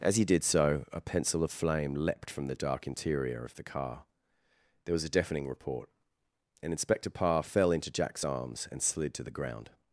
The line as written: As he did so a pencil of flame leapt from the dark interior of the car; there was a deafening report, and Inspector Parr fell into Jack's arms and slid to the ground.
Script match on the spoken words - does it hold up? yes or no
yes